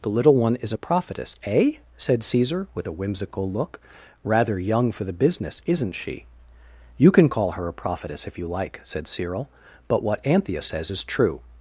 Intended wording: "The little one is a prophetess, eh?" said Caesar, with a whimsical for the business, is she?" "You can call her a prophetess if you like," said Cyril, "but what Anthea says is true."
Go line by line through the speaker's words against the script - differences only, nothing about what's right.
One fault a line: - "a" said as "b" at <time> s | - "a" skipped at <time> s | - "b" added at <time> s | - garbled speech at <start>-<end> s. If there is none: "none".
- "look Rather young" added at 3.5 s
- "is" said as "isn't" at 5.6 s